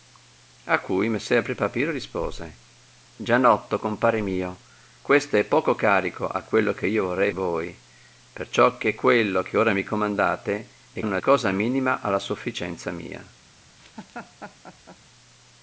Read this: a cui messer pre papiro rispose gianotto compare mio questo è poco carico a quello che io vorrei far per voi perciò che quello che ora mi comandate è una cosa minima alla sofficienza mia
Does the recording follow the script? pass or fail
fail